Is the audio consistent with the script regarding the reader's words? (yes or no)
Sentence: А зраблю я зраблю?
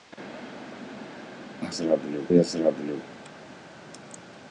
yes